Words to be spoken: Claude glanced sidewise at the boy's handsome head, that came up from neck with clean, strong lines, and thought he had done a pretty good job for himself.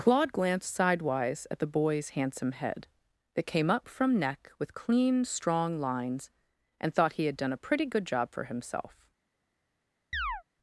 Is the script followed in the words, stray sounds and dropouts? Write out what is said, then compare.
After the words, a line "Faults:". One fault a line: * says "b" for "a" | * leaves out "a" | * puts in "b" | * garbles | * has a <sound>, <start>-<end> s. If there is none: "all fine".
Claude glanced sidewise at the boy's handsome head, that came up from neck with clean, strong lines, and thought he had done a pretty good job for himself.
Faults:
* has a chirp, 10.1-10.4 s